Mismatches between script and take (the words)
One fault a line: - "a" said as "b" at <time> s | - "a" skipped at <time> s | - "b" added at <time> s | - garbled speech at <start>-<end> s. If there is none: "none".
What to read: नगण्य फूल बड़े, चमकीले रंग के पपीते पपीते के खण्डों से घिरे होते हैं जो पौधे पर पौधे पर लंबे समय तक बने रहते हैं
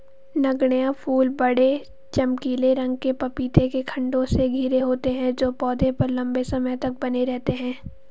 - "पपीते" skipped at 3.7 s
- "पौधे पर" skipped at 6.1 s